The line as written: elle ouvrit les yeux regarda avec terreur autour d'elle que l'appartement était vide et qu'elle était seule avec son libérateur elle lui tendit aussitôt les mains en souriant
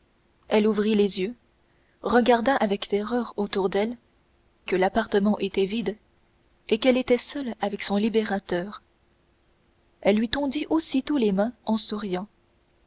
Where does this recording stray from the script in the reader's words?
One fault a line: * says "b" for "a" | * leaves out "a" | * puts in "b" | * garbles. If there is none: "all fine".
all fine